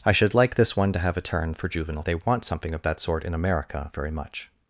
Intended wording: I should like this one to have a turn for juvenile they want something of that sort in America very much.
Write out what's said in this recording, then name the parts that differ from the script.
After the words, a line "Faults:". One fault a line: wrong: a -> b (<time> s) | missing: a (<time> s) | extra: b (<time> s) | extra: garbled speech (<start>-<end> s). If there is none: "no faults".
I should like this one to have a turn for juvenile they want something of that sort in America very much.
Faults:
no faults